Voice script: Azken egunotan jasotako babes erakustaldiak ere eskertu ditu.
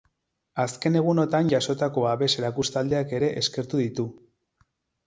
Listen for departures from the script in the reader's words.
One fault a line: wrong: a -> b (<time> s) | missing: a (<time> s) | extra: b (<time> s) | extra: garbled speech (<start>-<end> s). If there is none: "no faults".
no faults